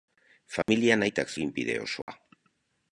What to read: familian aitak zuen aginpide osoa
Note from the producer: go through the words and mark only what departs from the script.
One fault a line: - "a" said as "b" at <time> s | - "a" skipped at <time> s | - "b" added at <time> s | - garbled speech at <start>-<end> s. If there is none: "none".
- "zuen" skipped at 1.3 s